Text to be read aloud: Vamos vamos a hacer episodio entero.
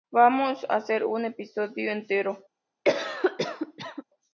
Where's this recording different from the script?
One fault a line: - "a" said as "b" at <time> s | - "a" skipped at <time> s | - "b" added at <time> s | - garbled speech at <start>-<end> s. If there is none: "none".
- "vamos" skipped at 0.7 s
- "un" added at 1.1 s